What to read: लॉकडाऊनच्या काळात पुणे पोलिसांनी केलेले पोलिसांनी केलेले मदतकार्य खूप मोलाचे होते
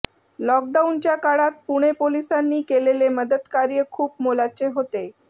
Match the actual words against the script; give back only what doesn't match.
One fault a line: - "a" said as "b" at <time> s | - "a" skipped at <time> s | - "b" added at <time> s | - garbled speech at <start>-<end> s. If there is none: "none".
- "पोलिसांनी केलेले" skipped at 3.1 s